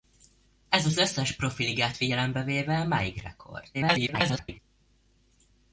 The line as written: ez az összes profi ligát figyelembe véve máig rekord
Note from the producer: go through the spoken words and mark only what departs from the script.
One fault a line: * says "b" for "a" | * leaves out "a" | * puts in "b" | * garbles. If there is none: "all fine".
* garbles